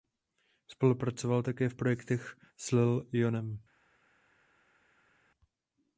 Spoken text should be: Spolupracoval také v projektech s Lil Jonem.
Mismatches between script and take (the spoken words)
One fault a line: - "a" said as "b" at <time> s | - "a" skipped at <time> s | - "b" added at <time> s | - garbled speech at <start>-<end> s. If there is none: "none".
none